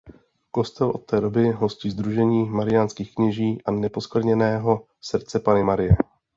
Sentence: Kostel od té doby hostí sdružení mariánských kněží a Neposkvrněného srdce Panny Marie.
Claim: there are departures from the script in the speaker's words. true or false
false